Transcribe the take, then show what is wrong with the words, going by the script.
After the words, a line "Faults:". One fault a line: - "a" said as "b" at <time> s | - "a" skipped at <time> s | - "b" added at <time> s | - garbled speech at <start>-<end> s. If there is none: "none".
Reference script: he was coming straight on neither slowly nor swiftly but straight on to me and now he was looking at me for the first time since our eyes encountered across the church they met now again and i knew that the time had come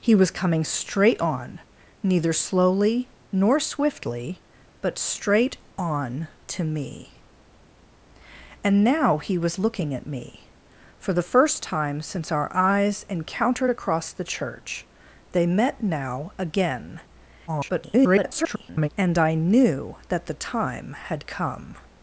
he was coming straight on neither slowly nor swiftly but straight on to me and now he was looking at me for the first time since our eyes encountered across the church they met now again [garbled] and i knew that the time had come
Faults:
- garbled speech at 17.5-18.9 s